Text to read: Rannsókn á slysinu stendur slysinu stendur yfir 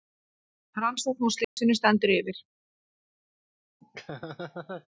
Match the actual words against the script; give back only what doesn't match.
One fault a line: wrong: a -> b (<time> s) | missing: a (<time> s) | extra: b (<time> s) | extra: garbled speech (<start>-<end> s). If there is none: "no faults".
missing: slysinu stendur (2.2 s)